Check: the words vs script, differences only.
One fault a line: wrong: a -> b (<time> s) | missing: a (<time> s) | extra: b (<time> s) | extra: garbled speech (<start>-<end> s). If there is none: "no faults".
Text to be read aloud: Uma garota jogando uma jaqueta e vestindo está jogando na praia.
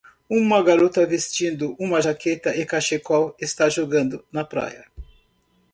wrong: jogando -> vestindo (1.1 s)
wrong: vestindo -> cachecol (2.6 s)